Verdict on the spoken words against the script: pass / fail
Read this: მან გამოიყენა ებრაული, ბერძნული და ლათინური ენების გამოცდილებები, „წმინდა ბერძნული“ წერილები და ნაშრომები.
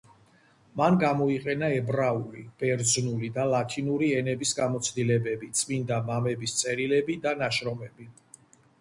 fail